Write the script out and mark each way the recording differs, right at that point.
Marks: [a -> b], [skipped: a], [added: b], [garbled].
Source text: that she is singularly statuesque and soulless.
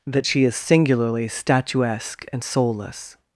that she is singularly statuesque and soulless.